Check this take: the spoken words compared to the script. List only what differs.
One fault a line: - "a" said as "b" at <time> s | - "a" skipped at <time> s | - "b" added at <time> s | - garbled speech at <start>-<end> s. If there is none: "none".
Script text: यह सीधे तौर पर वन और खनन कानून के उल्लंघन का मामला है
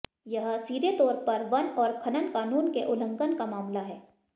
none